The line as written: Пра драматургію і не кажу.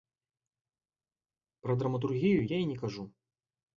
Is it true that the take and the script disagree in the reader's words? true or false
true